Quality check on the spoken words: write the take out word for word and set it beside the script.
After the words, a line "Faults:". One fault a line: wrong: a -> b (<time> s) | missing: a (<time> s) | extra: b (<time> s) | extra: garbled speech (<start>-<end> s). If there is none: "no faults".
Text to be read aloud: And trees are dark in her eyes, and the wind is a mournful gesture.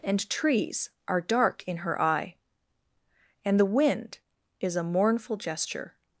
And trees are dark in her eye, and the wind is a mournful gesture.
Faults:
wrong: eyes -> eye (2.0 s)